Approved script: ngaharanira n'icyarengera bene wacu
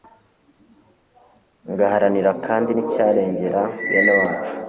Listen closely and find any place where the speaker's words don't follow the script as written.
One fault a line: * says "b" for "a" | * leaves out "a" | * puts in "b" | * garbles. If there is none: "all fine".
* puts in "kandi"